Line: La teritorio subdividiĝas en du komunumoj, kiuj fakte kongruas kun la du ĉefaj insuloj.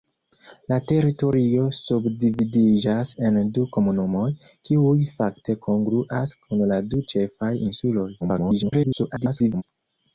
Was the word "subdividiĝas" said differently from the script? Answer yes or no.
no